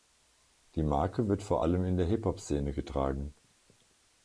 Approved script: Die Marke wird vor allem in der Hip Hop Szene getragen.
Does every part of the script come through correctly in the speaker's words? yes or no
yes